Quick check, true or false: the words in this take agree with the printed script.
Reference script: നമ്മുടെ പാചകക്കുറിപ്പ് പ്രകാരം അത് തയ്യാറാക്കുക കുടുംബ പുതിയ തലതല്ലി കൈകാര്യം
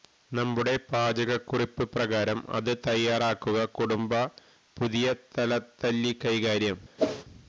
true